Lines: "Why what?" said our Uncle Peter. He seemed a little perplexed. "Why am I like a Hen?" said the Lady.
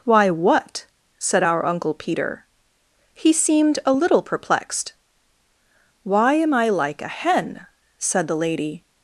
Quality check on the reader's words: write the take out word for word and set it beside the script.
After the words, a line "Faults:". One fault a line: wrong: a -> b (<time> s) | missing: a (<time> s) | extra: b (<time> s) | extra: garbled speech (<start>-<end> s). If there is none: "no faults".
"Why what?" said our Uncle Peter. He seemed a little perplexed. "Why am I like a Hen?" said the Lady.
Faults:
no faults